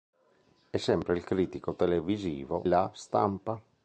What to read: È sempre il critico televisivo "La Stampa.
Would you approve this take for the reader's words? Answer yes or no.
yes